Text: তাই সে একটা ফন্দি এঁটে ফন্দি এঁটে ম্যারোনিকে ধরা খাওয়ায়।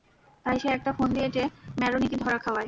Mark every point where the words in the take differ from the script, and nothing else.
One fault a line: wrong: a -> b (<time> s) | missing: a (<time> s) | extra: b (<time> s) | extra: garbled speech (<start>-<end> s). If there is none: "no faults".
missing: ফন্দি এঁটে (1.4 s)